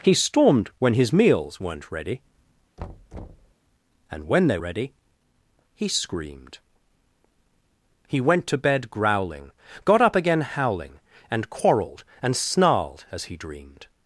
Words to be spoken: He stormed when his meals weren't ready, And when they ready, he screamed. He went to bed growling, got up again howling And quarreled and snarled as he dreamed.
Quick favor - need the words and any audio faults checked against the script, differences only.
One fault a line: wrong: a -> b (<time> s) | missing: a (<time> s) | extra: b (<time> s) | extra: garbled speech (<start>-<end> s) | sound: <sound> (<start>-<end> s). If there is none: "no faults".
sound: thud (2.8-3.5 s)